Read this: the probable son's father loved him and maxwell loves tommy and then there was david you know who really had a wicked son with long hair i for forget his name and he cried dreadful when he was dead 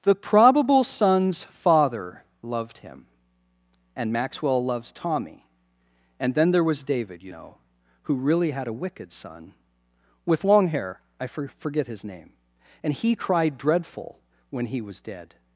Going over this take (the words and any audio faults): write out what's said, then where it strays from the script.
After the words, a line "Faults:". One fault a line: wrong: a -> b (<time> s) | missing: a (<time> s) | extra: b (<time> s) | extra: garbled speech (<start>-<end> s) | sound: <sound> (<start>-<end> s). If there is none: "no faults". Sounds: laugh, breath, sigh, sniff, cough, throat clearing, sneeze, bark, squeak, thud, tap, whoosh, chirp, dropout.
the probable son's father loved him and maxwell loves tommy and then there was david you know who really had a wicked son with long hair i for forget his name and he cried dreadful when he was dead
Faults:
no faults